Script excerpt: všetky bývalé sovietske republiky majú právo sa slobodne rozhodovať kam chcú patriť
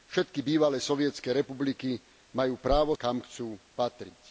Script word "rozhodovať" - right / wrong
wrong